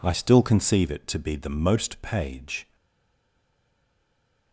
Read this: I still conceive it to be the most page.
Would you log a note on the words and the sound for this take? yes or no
no